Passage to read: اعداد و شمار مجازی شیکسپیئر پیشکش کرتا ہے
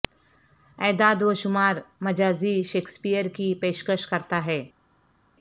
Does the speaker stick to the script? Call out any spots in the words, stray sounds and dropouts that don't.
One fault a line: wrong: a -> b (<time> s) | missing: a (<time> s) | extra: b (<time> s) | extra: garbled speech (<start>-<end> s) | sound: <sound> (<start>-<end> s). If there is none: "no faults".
extra: کی (3.3 s)